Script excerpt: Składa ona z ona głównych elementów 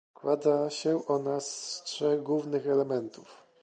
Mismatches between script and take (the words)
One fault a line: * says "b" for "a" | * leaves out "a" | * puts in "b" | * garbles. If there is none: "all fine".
* puts in "się"
* says "trzech" for "ona"